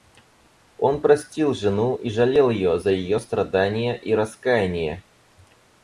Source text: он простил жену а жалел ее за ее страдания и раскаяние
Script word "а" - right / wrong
wrong